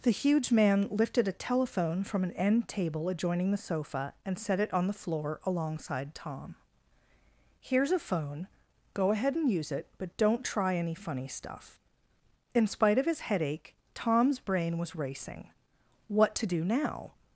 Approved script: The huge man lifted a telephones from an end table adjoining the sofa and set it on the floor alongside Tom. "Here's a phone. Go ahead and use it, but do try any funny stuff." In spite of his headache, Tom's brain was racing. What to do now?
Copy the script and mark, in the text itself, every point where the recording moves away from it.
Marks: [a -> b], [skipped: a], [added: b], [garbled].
The huge man lifted a [telephones -> telephone] from an end table adjoining the sofa and set it on the floor alongside Tom. "Here's a phone. Go ahead and use it, but [do -> don't] try any funny stuff." In spite of his headache, Tom's brain was racing. What to do now?